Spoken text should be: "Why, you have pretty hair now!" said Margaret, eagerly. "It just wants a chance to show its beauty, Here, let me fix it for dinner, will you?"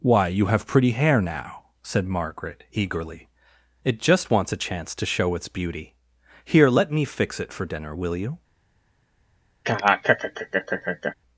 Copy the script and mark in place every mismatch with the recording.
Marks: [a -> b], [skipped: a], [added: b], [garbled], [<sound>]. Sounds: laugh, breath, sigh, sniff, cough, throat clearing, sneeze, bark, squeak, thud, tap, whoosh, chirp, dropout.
"Why, you have pretty hair now!" said Margaret, eagerly. "It just wants a chance to show its beauty, Here, let me fix it for dinner, will you?" [laugh]